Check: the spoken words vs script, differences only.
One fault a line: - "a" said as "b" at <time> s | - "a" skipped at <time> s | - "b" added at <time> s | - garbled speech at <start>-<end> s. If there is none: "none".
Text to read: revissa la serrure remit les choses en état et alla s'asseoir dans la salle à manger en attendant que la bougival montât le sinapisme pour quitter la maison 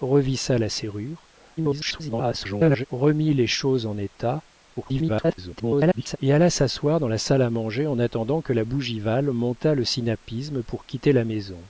- garbled speech at 1.6-2.9 s
- garbled speech at 4.8-6.2 s